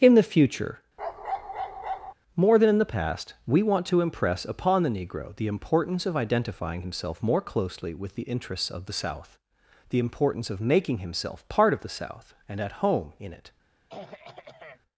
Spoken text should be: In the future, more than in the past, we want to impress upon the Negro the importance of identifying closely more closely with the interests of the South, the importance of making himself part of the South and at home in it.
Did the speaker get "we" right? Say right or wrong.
right